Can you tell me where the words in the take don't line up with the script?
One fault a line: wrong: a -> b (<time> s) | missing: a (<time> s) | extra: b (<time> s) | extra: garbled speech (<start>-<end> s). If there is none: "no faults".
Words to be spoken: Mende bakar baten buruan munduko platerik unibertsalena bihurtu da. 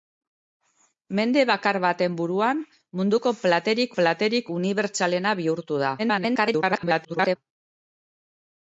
extra: platerik (3.9 s)
extra: garbled speech (6.0-7.4 s)